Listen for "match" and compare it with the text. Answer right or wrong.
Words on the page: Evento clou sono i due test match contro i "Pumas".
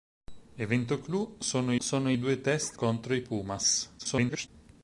wrong